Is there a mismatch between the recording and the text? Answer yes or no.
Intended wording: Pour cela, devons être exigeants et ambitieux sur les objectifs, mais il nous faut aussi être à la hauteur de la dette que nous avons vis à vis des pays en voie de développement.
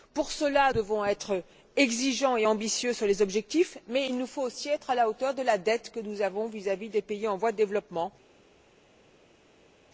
no